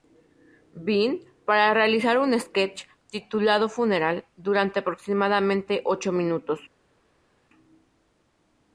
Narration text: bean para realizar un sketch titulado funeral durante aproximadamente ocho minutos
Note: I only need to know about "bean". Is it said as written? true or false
true